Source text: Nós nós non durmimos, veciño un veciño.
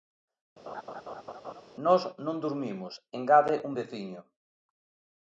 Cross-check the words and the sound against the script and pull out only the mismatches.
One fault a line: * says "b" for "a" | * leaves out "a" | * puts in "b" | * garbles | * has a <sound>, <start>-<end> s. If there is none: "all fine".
* has a laugh, 0.7-1.6 s
* leaves out "nós"
* says "engade" for "veciño"